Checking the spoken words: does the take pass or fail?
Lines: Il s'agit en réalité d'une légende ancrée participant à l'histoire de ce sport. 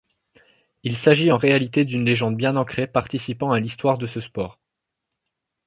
fail